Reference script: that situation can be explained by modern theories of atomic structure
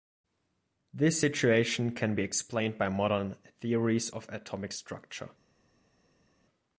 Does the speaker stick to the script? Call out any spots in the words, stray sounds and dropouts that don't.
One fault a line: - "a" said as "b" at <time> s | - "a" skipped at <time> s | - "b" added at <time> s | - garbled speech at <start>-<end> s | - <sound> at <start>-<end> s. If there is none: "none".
- "that" said as "this" at 0.9 s